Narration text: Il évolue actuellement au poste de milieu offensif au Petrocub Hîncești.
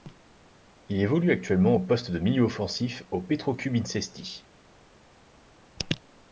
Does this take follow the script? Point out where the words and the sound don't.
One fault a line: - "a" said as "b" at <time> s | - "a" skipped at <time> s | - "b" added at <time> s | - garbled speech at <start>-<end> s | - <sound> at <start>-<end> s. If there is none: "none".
none